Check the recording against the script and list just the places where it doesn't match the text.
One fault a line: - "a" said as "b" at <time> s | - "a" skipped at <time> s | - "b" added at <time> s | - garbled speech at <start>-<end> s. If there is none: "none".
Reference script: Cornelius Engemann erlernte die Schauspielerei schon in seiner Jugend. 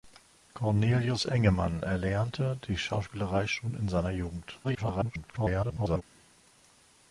- garbled speech at 4.6-6.0 s